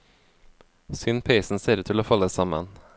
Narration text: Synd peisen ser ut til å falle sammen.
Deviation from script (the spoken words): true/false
false